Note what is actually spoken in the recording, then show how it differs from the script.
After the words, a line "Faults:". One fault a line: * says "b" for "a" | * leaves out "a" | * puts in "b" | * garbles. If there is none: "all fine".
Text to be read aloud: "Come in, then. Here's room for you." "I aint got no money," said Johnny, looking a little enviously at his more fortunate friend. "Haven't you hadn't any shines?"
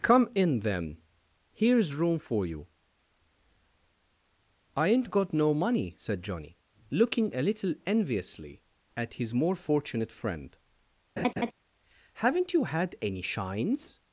"Come in, then. Here's room for you." "I aint got no money," said Johnny, looking a little enviously at his more fortunate friend. "Haven't you had any shines?"
Faults:
* says "had" for "hadn't"